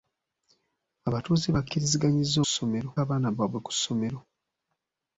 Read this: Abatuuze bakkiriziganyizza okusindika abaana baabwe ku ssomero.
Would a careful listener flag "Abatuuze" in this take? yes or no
no